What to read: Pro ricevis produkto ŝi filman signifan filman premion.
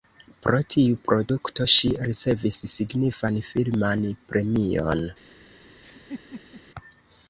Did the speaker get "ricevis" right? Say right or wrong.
wrong